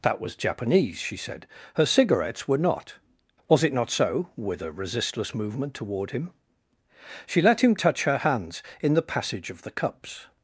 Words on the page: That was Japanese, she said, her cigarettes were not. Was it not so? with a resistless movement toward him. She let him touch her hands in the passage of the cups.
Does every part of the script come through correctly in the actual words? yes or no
yes